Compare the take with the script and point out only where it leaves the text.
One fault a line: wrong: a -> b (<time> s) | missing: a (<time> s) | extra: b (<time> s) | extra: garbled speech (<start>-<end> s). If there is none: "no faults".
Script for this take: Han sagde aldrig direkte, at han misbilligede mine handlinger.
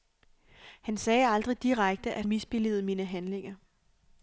missing: han (2.3 s)